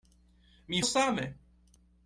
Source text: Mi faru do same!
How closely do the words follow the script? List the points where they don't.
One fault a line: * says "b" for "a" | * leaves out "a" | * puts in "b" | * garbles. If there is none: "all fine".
* leaves out "faru do"